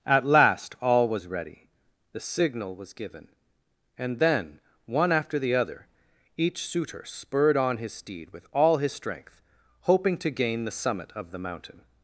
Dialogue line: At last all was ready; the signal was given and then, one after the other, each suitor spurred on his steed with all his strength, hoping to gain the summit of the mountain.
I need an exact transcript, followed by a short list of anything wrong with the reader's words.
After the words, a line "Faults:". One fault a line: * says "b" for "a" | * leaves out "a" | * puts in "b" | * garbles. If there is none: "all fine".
At last all was ready; the signal was given and then, one after the other, each suitor spurred on his steed with all his strength, hoping to gain the summit of the mountain.
Faults:
all fine